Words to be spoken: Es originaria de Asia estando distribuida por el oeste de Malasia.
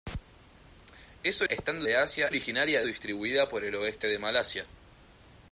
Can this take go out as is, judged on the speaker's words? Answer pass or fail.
fail